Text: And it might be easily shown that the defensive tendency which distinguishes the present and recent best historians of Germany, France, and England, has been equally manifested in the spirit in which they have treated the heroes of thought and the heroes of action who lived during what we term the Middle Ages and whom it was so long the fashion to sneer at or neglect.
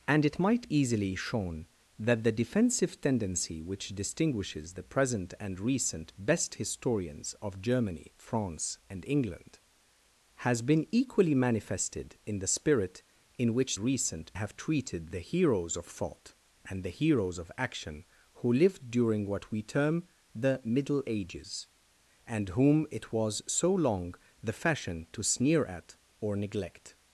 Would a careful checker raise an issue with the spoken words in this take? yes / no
yes